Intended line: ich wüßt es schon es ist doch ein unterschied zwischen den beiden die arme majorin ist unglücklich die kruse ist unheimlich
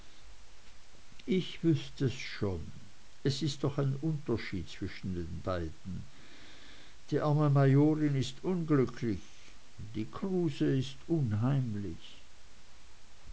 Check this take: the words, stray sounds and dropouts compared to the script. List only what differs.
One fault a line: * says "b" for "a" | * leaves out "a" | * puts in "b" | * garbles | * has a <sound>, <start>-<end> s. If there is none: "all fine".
all fine